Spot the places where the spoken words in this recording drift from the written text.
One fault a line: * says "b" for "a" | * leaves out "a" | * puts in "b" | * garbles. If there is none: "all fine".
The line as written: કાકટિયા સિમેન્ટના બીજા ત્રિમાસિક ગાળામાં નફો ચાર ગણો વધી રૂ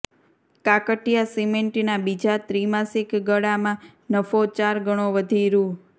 all fine